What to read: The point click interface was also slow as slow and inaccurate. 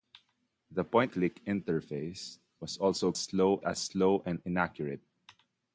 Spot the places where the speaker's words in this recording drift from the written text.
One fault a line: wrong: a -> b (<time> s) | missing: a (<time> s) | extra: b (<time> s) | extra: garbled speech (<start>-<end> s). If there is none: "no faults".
no faults